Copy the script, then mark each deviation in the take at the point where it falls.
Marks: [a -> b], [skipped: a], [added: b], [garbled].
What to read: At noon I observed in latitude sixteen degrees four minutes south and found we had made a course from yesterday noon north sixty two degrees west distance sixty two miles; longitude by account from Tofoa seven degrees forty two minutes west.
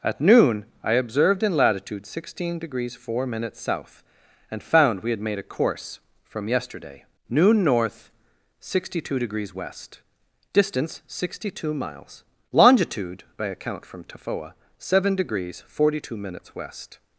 At noon I observed in latitude sixteen degrees four minutes south and found we had made a course from yesterday noon north sixty two degrees west distance sixty two miles; longitude by account from Tofoa seven degrees forty two minutes west.